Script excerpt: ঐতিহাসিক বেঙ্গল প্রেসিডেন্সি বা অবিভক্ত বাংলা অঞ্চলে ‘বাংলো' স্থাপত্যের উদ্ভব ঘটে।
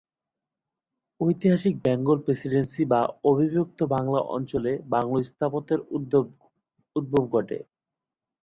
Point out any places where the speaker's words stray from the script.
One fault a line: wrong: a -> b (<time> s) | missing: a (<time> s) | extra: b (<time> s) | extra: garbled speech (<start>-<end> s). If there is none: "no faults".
no faults